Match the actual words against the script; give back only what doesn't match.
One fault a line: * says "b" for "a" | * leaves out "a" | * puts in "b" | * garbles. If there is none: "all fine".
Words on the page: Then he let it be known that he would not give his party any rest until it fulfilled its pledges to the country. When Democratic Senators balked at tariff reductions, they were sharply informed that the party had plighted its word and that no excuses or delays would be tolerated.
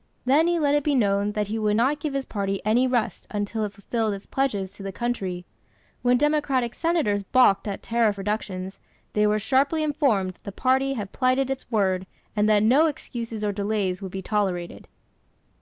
all fine